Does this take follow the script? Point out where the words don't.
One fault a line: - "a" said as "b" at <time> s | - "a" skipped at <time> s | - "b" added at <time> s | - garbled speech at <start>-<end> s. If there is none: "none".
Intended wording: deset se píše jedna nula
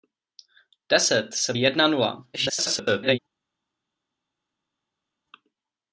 - "píše" skipped at 1.5 s
- garbled speech at 2.3-3.2 s